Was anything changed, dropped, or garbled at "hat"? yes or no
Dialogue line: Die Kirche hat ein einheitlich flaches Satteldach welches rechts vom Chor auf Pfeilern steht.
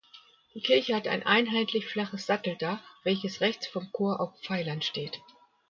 no